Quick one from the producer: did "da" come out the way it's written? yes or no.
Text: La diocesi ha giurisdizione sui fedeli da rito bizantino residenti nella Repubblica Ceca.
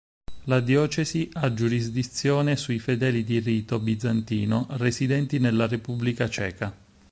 no